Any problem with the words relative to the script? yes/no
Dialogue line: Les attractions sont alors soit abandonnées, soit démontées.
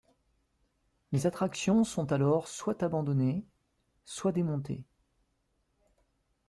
no